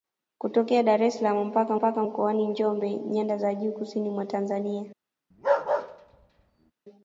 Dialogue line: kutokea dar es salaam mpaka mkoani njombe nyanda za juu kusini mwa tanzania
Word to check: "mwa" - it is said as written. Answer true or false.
true